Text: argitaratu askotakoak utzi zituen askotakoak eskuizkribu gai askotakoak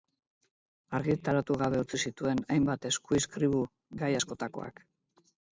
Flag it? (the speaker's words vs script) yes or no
yes